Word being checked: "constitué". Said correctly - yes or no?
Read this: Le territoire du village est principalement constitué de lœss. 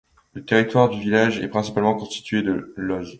yes